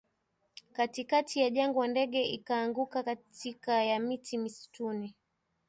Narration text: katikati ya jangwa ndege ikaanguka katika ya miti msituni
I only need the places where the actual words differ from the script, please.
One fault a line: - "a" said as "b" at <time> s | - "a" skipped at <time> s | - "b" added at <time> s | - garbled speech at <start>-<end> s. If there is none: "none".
none